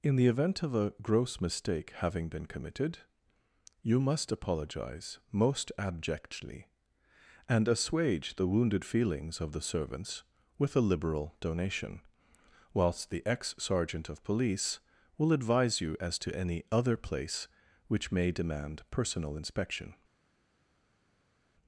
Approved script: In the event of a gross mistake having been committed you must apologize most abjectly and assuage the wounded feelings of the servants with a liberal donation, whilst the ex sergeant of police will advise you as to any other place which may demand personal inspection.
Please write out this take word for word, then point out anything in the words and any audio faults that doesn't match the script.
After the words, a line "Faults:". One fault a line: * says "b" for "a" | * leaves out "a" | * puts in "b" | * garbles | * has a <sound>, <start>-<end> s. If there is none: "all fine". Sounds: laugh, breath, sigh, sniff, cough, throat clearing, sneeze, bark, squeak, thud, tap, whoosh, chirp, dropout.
In the event of a gross mistake having been committed you must apologize most abjectly and assuage the wounded feelings of the servants with a liberal donation, whilst the ex sergeant of police will advise you as to any other place which may demand personal inspection.
Faults:
all fine